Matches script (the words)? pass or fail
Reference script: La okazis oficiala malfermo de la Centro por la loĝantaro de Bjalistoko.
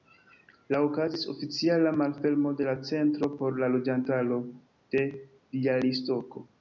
pass